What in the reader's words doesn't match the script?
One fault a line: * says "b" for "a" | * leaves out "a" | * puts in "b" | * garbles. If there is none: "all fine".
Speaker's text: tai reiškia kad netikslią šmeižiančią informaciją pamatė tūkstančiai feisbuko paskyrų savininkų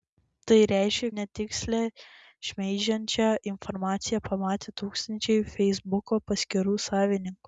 * leaves out "kad"